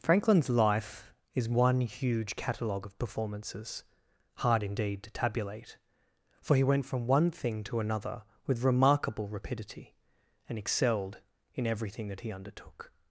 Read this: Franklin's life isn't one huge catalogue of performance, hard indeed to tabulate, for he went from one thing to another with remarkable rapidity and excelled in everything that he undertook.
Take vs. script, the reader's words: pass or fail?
fail